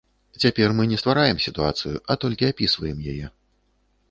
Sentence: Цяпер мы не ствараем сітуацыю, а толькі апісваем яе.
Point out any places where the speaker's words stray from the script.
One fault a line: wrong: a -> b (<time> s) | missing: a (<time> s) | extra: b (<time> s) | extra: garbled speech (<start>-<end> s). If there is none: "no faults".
no faults